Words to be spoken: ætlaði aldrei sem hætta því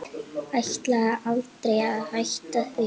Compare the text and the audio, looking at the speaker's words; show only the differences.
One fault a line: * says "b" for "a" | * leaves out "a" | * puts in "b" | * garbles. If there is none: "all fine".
* says "að" for "sem"